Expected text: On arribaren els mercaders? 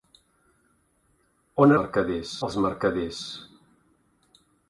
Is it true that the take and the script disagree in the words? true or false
true